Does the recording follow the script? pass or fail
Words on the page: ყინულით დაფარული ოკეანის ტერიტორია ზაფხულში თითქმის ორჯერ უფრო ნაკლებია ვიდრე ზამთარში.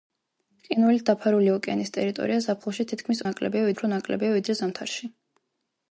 fail